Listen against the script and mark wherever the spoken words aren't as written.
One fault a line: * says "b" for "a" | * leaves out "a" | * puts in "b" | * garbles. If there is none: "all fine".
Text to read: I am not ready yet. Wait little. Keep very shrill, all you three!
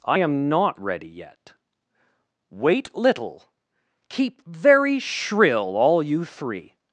all fine